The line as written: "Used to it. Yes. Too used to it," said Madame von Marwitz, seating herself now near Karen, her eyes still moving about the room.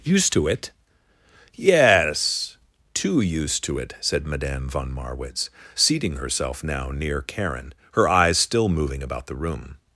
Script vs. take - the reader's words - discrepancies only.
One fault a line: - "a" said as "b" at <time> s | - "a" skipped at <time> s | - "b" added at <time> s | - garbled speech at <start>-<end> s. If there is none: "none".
none